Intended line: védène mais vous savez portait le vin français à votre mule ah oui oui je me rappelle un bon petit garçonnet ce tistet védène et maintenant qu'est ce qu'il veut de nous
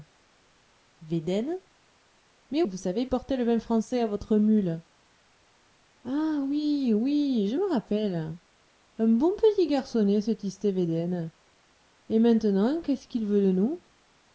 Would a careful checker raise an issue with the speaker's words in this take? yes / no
no